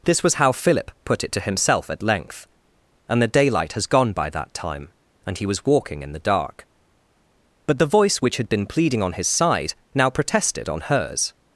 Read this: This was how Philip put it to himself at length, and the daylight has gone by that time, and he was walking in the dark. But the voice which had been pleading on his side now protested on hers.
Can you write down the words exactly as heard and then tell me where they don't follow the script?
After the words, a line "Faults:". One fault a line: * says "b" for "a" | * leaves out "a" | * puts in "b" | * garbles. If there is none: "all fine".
This was how Philip put it to himself at length, and the daylight has gone by that time, and he was walking in the dark. But the voice which had been pleading on his side now protested on hers.
Faults:
all fine